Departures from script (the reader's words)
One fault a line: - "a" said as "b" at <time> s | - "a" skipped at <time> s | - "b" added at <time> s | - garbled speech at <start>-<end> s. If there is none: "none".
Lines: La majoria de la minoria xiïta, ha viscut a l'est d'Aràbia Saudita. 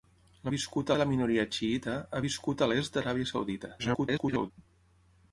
- "majoria" said as "viscut" at 0.5 s
- garbled speech at 3.8-4.5 s